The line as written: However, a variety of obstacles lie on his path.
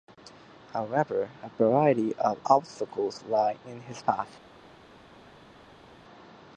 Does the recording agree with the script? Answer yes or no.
no